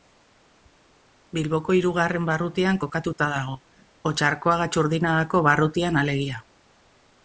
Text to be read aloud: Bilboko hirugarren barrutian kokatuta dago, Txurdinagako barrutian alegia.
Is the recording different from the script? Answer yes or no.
yes